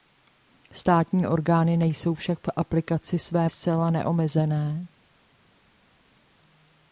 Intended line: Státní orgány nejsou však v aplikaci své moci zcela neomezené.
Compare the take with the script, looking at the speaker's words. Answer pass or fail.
fail